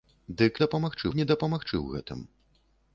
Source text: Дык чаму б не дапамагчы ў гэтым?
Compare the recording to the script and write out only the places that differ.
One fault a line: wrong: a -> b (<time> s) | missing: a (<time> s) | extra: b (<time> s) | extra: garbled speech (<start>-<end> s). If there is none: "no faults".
wrong: чаму -> дапамагчы (0.6 s)